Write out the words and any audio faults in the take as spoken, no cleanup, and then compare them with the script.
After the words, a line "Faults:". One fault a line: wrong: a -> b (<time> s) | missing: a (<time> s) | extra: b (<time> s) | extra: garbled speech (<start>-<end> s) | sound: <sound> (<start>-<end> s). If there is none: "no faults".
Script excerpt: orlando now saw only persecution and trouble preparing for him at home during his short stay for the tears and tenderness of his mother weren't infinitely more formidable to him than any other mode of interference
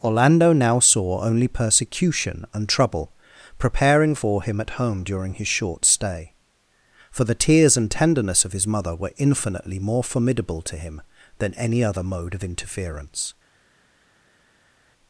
orlando now saw only persecution and trouble preparing for him at home during his short stay for the tears and tenderness of his mother were infinitely more formidable to him than any other mode of interference
Faults:
wrong: weren't -> were (8.9 s)